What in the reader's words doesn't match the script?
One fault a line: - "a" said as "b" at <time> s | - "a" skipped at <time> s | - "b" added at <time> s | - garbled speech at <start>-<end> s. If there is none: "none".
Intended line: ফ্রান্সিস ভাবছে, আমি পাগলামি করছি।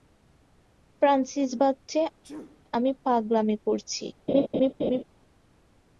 none